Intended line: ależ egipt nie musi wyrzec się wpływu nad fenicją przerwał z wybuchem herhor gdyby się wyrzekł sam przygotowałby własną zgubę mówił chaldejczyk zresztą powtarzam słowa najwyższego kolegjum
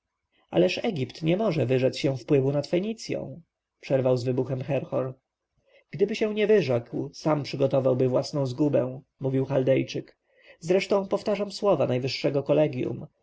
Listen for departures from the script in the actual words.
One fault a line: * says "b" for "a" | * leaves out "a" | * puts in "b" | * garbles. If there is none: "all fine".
* says "może" for "musi"
* puts in "nie"